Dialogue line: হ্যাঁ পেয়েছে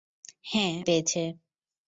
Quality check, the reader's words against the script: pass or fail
pass